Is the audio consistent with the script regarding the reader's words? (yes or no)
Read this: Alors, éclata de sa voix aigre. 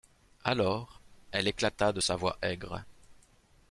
no